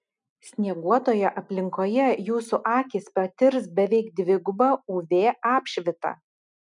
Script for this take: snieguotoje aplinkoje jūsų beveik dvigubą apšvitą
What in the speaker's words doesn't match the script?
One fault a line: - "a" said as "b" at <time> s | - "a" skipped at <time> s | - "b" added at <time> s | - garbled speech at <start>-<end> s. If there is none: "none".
- "akys patirs" added at 2.8 s
- "uv" added at 5.0 s